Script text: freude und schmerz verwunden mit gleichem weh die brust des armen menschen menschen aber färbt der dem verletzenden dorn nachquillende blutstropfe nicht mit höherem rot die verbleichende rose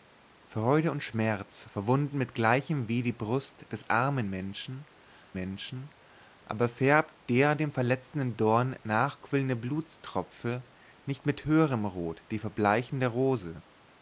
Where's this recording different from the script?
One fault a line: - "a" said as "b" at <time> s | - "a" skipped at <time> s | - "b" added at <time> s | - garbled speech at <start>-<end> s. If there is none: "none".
none